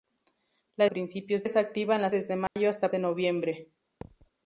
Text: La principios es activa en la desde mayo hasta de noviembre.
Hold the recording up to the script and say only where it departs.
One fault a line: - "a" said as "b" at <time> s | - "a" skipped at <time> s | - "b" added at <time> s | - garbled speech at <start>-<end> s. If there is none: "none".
none